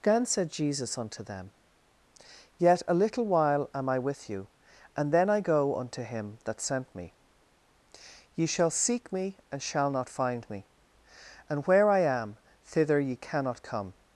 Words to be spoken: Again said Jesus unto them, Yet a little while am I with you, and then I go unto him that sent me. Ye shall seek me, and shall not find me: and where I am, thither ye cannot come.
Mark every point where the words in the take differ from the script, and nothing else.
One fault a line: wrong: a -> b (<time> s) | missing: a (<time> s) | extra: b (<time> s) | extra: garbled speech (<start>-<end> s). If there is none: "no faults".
no faults